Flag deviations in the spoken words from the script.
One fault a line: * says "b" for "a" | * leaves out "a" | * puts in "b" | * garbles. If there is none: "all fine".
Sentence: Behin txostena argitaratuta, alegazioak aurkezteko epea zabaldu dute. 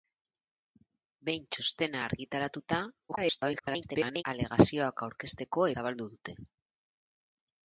* garbles
* leaves out "epea"